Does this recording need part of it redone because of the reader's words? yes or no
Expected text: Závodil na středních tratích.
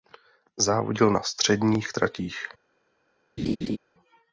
no